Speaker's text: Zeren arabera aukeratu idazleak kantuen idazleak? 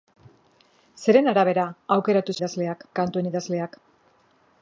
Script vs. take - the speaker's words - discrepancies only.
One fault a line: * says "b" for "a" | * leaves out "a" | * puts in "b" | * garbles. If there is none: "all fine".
all fine